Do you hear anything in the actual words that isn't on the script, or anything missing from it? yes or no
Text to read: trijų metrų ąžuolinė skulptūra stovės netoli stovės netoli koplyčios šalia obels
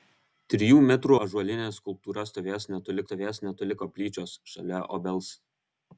no